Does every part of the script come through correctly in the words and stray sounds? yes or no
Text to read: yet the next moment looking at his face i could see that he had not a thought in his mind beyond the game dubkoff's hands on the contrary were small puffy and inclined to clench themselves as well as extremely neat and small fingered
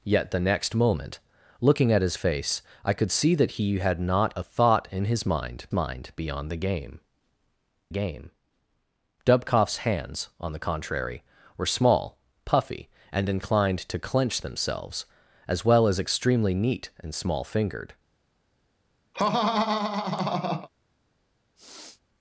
no